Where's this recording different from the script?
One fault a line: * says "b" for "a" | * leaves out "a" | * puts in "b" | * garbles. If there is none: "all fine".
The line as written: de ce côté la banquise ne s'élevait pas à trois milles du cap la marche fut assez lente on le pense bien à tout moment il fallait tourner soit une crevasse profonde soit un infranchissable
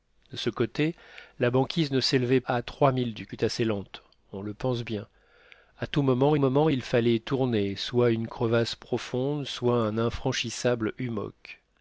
* leaves out "pas"
* leaves out "cap la marche"
* puts in "moment"